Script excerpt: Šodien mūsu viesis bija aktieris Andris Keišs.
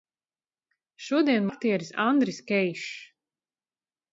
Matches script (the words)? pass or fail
fail